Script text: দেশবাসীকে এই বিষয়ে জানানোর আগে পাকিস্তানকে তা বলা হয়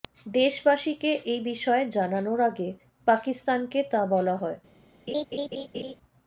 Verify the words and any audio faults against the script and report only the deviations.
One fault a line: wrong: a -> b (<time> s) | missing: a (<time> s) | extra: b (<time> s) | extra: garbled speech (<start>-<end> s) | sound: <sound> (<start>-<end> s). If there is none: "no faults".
sound: laugh (5.1-5.9 s)